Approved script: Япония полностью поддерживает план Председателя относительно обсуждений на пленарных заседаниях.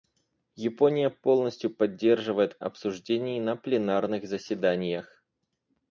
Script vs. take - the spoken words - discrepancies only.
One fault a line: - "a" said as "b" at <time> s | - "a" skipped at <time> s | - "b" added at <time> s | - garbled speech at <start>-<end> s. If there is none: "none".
- "план Председателя относительно" skipped at 2.6 s